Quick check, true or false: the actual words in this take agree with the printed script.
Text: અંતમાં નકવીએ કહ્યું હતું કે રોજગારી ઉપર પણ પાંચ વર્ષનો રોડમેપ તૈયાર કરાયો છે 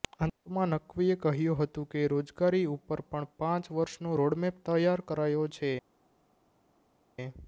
true